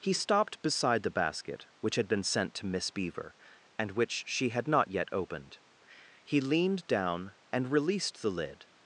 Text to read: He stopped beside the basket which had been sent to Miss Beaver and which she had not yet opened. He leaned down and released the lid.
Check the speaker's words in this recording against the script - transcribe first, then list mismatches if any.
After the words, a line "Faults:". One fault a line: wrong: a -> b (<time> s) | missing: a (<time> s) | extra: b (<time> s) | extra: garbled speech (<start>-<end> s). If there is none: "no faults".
He stopped beside the basket which had been sent to Miss Beaver and which she had not yet opened. He leaned down and released the lid.
Faults:
no faults